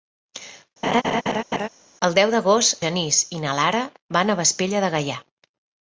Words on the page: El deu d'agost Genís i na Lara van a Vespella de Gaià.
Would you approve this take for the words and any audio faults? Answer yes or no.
no